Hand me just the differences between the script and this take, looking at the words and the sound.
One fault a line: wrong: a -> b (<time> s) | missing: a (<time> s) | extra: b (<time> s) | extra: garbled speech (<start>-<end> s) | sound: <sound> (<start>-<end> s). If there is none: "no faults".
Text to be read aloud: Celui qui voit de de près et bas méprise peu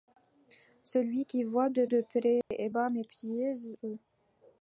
sound: dropout (2.4-2.5 s)